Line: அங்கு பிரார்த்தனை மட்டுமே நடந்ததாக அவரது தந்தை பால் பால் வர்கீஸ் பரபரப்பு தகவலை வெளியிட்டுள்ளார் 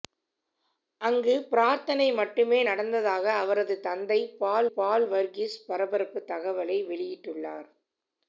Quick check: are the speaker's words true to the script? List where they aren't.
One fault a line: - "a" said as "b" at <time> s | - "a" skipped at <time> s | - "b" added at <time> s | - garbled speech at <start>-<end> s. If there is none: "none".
none